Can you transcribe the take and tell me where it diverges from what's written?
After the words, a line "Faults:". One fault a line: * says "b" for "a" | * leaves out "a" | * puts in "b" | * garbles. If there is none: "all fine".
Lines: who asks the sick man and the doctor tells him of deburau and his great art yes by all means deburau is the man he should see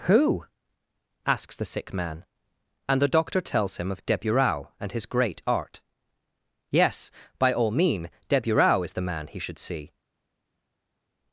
who asks the sick man and the doctor tells him of deburau and his great art yes by all mean deburau is the man he should see
Faults:
* says "mean" for "means"